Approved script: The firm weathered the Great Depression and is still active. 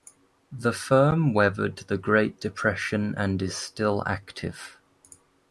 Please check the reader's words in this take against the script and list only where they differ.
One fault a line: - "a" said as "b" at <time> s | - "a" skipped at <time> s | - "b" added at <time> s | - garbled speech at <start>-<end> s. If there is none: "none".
none